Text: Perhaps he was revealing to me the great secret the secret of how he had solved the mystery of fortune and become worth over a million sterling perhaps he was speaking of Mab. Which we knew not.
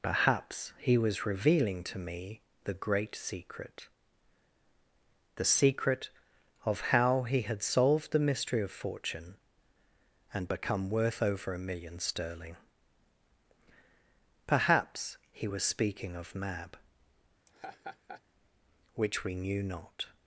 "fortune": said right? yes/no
yes